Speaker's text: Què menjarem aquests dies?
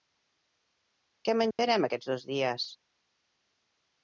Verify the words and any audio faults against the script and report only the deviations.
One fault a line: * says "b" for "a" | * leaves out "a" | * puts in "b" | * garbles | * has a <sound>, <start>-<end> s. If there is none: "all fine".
* has a dropout, 1.5-1.6 s
* puts in "dos"